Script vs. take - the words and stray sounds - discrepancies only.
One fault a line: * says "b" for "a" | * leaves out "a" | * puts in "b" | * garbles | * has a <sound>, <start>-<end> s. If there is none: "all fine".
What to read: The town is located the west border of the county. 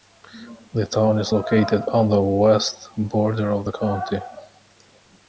* puts in "on"